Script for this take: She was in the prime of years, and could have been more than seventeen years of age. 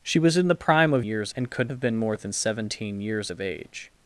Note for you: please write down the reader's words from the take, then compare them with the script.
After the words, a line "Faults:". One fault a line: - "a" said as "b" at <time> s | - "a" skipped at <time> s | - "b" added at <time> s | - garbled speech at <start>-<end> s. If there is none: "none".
She was in the prime of years, and could have been more than seventeen years of age.
Faults:
none